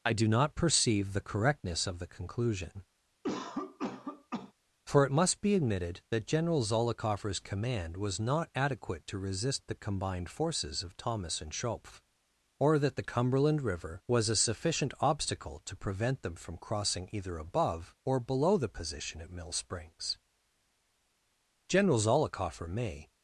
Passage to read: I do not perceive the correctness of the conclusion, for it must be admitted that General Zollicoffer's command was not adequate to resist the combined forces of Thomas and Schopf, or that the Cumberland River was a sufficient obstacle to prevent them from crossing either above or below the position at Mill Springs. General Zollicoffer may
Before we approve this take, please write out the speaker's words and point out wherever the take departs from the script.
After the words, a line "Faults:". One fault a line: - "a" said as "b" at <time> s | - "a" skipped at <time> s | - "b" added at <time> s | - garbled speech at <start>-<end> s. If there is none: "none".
I do not perceive the correctness of the conclusion, for it must be admitted that General Zollicoffer's command was not adequate to resist the combined forces of Thomas and Schopf, or that the Cumberland River was a sufficient obstacle to prevent them from crossing either above or below the position at Mill Springs. General Zollicoffer may
Faults:
none